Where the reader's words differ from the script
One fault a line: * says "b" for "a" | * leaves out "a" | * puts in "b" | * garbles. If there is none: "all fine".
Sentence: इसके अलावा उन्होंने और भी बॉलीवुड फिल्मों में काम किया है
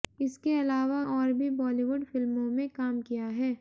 * leaves out "उन्होंने"